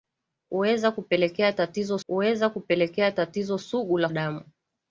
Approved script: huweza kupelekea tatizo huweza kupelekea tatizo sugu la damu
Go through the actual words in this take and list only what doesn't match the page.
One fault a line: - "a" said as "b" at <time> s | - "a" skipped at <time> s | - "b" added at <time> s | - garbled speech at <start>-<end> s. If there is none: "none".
none